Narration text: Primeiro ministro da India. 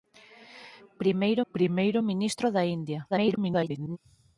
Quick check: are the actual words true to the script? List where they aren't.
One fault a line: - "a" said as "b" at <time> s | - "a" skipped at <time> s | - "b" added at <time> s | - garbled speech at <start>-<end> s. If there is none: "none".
- "primeiro" added at 1.5 s
- garbled speech at 3.1-4.0 s